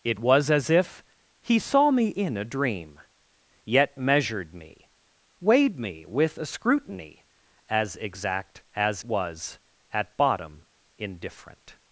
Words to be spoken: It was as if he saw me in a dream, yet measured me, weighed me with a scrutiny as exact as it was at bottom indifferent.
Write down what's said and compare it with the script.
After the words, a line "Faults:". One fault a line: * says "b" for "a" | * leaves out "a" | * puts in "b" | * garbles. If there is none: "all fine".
It was as if he saw me in a dream, yet measured me, weighed me with a scrutiny as exact as was at bottom indifferent.
Faults:
* leaves out "it"